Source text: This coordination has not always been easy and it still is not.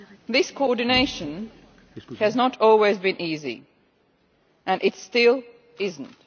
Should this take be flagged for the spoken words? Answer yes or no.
no